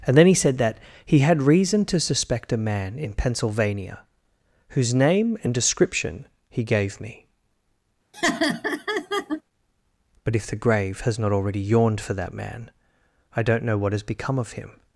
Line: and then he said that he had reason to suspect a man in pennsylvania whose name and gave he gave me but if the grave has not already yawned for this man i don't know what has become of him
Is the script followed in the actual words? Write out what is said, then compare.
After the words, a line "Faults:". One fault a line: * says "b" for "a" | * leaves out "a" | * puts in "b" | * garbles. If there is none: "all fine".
and then he said that he had reason to suspect a man in pennsylvania whose name and description he gave me but if the grave has not already yawned for that man i don't know what has become of him
Faults:
* says "description" for "gave"
* says "that" for "this"